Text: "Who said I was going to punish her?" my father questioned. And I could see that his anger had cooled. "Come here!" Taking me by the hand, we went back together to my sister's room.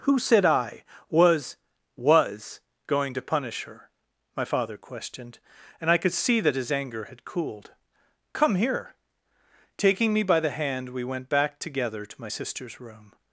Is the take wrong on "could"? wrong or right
right